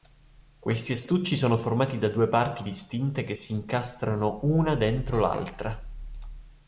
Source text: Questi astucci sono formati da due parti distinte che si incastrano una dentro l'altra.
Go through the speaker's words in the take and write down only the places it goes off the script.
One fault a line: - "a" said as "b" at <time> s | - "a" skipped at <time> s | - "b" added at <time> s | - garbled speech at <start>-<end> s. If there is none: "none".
none